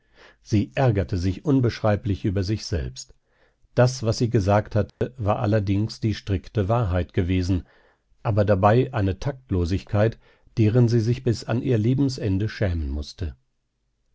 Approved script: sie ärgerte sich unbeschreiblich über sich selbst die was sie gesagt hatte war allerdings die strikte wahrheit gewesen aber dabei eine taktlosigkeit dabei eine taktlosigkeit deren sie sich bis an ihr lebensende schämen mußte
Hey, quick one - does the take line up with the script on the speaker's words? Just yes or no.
no